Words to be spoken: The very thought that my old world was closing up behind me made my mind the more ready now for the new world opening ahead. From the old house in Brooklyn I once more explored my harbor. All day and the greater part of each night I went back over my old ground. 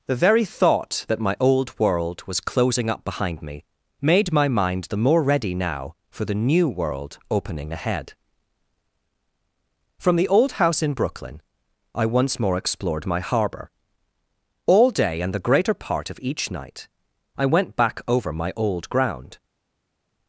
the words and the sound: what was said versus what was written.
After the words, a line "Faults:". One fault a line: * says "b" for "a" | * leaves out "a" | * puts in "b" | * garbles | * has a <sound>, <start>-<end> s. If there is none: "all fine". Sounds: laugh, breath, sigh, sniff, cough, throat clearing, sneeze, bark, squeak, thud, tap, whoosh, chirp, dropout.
The very thought that my old world was closing up behind me made my mind the more ready now for the new world opening ahead. From the old house in Brooklyn I once more explored my harbor. All day and the greater part of each night I went back over my old ground.
Faults:
all fine